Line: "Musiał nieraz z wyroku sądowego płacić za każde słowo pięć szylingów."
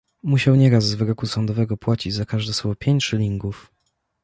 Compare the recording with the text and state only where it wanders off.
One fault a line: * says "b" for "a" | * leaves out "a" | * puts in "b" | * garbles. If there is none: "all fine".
all fine